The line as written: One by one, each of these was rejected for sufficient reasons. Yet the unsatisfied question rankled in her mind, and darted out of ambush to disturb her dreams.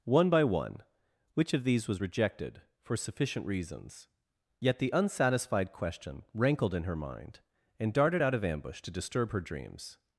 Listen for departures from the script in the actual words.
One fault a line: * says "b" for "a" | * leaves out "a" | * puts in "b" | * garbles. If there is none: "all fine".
* says "which" for "each"